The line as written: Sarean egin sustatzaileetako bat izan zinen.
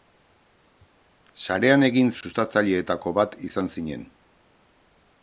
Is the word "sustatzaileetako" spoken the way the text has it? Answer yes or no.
yes